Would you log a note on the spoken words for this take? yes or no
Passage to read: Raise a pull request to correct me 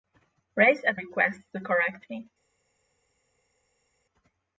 yes